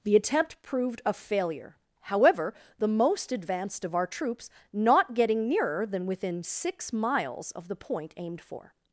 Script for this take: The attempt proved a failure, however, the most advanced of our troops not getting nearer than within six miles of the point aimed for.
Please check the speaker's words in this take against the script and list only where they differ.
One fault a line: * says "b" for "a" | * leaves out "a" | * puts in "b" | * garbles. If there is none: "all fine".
all fine